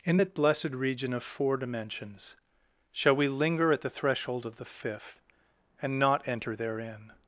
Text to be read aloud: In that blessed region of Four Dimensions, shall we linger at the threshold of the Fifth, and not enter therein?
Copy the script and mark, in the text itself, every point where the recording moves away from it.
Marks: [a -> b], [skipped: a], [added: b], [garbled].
In that blessed region of Four Dimensions, shall we linger at the threshold of the Fifth, and not enter therein?